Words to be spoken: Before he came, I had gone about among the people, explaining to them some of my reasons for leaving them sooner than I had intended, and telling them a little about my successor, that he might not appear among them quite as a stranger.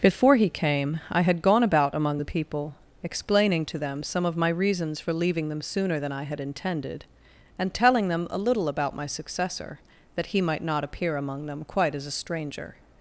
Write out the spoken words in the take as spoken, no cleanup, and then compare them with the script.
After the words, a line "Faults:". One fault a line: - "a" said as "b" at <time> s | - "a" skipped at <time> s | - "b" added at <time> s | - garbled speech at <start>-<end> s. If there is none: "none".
Before he came, I had gone about among the people, explaining to them some of my reasons for leaving them sooner than I had intended, and telling them a little about my successor, that he might not appear among them quite as a stranger.
Faults:
none